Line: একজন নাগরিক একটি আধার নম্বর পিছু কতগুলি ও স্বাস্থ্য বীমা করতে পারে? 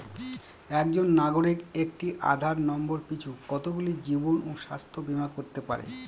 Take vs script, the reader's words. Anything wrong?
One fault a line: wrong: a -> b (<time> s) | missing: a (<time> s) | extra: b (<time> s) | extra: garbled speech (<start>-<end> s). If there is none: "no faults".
extra: জীবন (4.1 s)